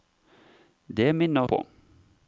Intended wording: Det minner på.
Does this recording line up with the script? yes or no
yes